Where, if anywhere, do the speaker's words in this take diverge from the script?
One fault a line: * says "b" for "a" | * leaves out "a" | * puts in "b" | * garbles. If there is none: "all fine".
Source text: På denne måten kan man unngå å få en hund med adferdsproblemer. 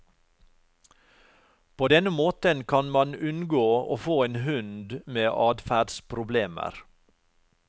all fine